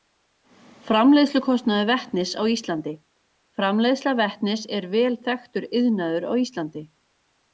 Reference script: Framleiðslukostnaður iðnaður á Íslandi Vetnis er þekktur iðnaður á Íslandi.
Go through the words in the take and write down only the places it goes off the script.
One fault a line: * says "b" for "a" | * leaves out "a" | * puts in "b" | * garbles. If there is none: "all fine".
* says "vetnis" for "iðnaður"
* puts in "Framleiðsla"
* puts in "vel"